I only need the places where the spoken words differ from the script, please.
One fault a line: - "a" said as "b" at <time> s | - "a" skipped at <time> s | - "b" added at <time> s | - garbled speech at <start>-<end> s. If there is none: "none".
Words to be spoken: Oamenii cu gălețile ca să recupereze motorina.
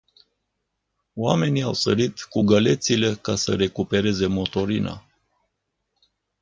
- "au sărit" added at 1.6 s